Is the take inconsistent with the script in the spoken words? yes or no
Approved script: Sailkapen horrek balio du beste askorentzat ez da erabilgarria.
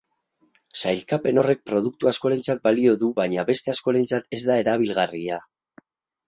yes